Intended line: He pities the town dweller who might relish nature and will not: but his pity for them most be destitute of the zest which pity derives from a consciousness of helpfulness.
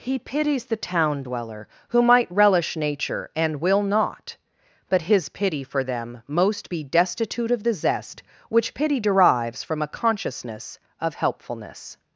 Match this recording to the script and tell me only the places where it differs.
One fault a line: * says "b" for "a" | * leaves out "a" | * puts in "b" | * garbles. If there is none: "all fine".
all fine